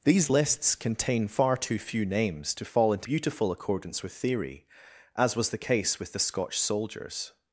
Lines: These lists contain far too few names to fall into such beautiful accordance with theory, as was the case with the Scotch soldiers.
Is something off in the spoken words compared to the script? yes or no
yes